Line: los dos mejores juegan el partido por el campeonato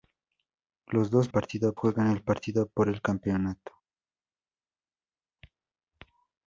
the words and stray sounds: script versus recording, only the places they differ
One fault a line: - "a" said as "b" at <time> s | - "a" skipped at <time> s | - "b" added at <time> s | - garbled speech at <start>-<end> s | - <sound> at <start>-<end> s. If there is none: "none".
- "mejores" said as "partido" at 1.3 s